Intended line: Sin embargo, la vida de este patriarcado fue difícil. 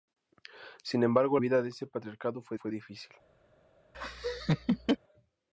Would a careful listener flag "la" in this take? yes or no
yes